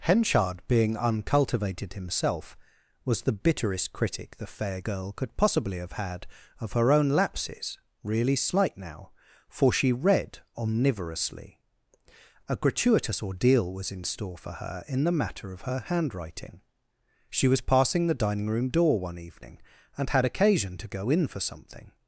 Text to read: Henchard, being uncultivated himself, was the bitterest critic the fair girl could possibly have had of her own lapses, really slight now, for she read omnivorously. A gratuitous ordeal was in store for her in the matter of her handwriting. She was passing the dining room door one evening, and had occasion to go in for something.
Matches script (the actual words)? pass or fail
pass